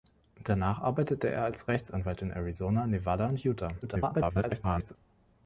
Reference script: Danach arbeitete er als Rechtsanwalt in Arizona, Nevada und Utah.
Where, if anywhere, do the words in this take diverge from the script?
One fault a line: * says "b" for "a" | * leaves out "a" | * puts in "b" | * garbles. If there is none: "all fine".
* garbles